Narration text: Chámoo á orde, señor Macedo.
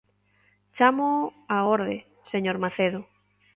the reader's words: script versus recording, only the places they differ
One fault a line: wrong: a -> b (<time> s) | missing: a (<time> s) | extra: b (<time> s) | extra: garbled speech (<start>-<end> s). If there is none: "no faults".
no faults